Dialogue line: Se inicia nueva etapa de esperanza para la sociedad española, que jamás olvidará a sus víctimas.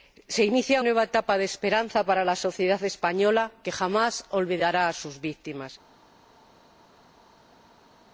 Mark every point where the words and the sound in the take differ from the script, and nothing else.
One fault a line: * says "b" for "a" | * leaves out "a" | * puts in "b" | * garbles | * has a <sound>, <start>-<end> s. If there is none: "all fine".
all fine